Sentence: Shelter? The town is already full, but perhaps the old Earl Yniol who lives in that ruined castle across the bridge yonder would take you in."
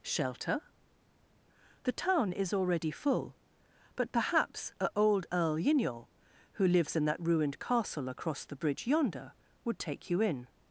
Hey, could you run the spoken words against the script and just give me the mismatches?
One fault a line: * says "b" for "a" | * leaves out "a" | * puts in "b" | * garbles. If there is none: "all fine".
* says "a" for "the"